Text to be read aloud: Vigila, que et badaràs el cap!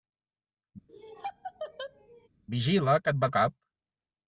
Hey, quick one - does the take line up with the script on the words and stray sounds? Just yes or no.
no